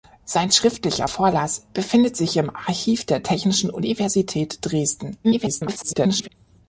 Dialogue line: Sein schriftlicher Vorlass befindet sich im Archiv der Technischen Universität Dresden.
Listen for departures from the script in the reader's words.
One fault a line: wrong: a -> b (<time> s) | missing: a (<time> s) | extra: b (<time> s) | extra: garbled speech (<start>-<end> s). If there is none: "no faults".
extra: garbled speech (5.2-6.3 s)